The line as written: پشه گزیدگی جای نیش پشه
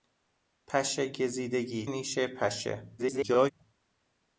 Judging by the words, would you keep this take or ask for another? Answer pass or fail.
fail